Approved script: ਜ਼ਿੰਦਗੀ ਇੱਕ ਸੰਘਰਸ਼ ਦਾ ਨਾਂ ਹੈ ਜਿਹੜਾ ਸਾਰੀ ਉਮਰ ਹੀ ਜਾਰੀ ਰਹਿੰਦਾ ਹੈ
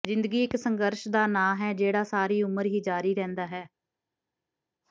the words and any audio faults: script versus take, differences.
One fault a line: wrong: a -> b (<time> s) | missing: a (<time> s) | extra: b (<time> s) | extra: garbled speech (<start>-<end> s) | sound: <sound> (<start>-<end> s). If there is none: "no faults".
no faults